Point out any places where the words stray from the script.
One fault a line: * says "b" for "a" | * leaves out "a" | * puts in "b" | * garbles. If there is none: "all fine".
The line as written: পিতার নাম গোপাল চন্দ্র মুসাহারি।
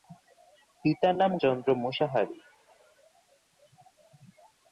* leaves out "গোপাল"